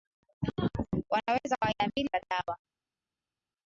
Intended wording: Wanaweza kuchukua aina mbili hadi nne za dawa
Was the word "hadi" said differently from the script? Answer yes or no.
yes